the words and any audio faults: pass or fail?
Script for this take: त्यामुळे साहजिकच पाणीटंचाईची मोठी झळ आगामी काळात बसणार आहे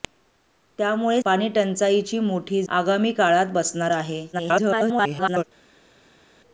fail